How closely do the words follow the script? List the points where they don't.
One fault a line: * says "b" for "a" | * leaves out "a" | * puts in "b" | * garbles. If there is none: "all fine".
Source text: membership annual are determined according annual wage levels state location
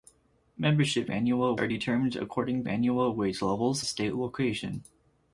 all fine